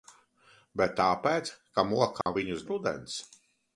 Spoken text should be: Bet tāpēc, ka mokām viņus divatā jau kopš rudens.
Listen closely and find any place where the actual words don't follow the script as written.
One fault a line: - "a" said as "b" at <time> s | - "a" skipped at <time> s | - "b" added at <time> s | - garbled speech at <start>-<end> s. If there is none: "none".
- "divatā jau kopš" skipped at 2.6 s